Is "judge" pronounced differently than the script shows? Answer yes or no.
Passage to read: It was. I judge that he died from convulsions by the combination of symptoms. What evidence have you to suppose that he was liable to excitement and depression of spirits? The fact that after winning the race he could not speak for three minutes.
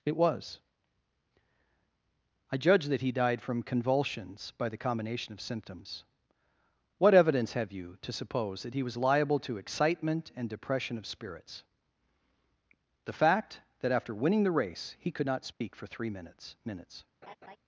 no